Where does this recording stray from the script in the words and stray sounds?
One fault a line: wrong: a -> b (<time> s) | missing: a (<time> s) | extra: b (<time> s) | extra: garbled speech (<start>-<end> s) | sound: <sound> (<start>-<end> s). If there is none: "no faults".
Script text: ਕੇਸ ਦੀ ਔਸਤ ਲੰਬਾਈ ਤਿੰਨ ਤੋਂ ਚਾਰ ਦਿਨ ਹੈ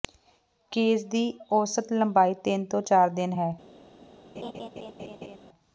sound: laugh (4.4-5.4 s)